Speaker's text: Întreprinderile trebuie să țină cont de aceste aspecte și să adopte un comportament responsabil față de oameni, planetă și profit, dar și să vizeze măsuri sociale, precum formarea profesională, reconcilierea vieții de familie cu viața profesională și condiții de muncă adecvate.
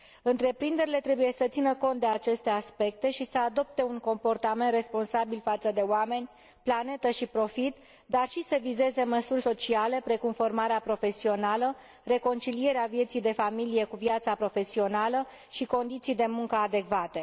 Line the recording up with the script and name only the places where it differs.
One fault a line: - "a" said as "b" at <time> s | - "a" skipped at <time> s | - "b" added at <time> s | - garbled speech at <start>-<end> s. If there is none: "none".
none